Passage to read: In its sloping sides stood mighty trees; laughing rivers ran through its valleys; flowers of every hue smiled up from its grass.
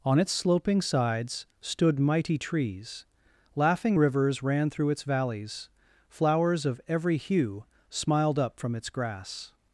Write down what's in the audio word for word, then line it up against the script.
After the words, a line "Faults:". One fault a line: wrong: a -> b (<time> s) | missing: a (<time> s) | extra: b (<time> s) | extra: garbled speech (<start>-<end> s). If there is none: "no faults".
On its sloping sides stood mighty trees; laughing rivers ran through its valleys; flowers of every hue smiled up from its grass.
Faults:
wrong: In -> On (0.0 s)